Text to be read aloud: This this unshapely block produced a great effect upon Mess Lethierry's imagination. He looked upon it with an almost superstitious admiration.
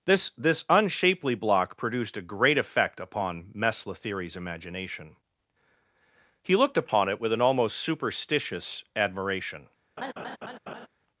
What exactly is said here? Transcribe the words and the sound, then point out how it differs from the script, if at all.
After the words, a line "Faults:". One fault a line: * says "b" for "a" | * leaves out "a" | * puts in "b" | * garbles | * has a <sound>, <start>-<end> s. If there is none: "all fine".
This this unshapely block produced a great effect upon Mess Lethierry's imagination. He looked upon it with an almost superstitious admiration.
Faults:
* has a laugh, 10.0-10.9 s